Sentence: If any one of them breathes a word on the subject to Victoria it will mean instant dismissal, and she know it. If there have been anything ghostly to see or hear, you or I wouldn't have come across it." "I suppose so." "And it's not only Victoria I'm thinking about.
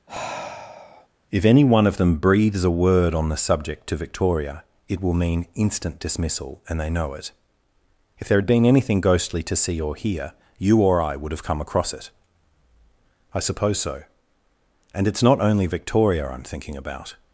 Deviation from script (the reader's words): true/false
true